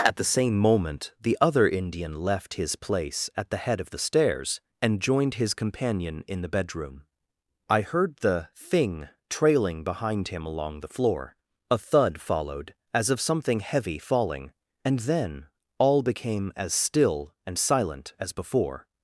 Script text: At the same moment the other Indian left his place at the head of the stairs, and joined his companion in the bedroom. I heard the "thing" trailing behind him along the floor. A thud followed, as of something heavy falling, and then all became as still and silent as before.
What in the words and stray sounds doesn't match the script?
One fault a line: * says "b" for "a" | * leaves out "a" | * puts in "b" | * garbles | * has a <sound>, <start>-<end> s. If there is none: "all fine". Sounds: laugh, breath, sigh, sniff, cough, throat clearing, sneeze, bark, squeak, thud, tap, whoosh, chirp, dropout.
all fine